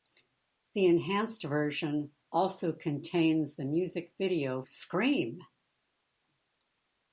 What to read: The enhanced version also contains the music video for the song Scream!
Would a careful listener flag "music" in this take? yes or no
no